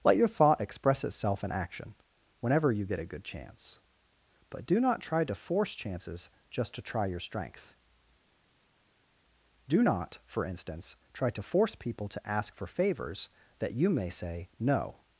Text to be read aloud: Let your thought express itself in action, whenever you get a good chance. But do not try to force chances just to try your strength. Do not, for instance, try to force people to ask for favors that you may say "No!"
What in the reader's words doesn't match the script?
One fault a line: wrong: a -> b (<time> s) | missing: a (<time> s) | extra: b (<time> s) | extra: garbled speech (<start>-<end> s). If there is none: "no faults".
no faults